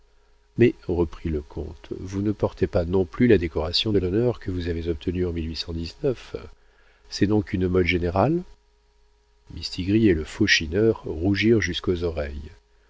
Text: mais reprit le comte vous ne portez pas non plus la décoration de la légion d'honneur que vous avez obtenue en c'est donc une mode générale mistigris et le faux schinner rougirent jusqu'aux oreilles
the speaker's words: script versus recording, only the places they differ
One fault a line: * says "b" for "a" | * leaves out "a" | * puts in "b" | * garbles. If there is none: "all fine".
* leaves out "la légion"